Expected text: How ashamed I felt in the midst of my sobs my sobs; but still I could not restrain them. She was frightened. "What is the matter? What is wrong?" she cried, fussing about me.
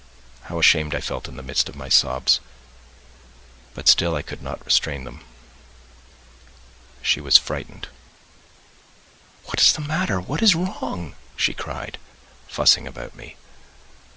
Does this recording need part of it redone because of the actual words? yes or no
yes